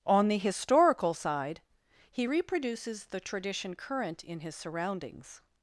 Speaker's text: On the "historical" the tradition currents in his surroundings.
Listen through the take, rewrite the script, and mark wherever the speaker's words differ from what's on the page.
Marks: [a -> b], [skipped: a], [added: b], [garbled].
On the "historical" [added: side he reproduces] the tradition [currents -> current] in his surroundings.